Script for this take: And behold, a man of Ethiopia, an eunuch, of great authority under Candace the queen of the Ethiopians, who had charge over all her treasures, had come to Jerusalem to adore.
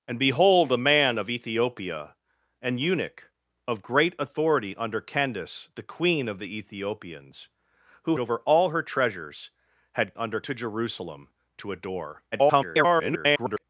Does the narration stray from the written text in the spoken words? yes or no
yes